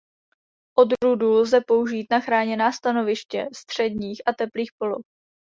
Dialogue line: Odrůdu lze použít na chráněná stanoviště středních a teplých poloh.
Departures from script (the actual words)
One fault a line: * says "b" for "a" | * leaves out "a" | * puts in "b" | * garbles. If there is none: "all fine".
all fine